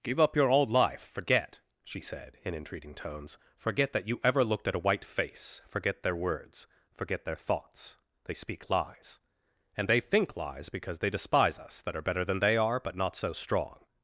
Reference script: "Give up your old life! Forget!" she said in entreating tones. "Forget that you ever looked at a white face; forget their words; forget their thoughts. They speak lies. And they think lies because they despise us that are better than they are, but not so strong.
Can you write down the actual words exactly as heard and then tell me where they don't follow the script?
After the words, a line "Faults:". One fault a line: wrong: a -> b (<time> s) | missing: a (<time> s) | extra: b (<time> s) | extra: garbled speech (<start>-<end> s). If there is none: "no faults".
"Give up your old life! Forget!" she said in entreating tones. "Forget that you ever looked at a white face; forget their words; forget their thoughts. They speak lies. And they think lies because they despise us that are better than they are, but not so strong.
Faults:
no faults